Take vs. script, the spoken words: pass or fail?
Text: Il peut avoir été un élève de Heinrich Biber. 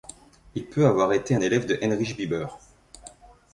pass